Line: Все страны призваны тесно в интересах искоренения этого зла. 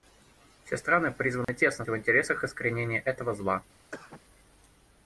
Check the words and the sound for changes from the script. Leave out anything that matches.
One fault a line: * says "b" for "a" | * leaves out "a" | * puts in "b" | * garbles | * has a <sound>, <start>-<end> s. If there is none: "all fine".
* has a dropout, 1.4-1.5 s
* has a cough, 3.9-4.2 s